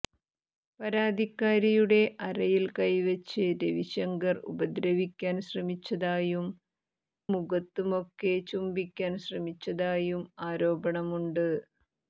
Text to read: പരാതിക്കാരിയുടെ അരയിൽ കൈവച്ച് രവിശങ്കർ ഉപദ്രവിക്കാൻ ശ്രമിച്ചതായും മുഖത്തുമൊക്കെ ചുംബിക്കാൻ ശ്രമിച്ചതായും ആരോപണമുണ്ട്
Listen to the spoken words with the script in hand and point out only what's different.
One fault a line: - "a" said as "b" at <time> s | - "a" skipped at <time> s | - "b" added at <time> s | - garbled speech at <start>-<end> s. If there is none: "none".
none